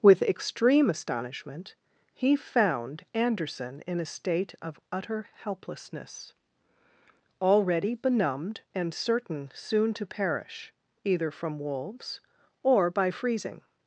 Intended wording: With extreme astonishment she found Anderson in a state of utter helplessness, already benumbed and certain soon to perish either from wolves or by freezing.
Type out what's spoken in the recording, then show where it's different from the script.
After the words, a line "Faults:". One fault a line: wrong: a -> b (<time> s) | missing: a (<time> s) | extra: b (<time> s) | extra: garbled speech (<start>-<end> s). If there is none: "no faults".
With extreme astonishment he found Anderson in a state of utter helplessness, already benumbed and certain soon to perish either from wolves or by freezing.
Faults:
wrong: she -> he (2.1 s)